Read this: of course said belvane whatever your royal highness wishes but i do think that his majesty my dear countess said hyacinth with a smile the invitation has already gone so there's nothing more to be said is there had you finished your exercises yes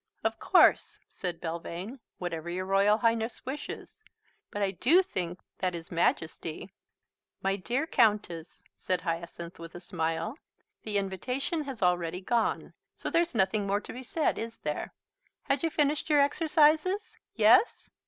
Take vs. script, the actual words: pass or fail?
pass